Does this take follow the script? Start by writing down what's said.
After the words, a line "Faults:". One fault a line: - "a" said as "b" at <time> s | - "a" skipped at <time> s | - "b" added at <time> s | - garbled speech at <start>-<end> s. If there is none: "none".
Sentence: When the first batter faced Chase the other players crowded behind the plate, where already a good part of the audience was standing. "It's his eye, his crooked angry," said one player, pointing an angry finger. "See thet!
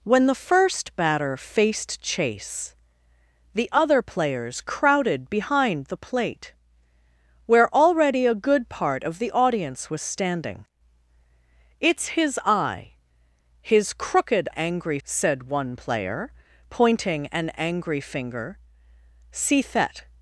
When the first batter faced Chase the other players crowded behind the plate, where already a good part of the audience was standing. "It's his eye, his crooked angry," said one player, pointing an angry finger. "See thet!
Faults:
none